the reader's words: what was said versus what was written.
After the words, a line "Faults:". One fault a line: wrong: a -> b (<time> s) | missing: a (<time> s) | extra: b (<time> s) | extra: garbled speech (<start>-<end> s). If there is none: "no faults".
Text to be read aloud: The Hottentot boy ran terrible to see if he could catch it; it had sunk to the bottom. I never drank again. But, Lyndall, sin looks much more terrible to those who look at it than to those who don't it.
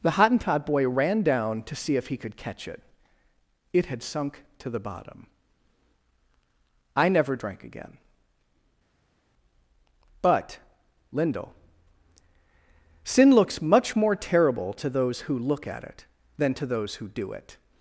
The Hottentot boy ran down to see if he could catch it; it had sunk to the bottom. I never drank again. But, Lyndall, sin looks much more terrible to those who look at it than to those who do it.
Faults:
wrong: terrible -> down (1.2 s)
wrong: don't -> do (17.1 s)